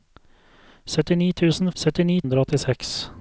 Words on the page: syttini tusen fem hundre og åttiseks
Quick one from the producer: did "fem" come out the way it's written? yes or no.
no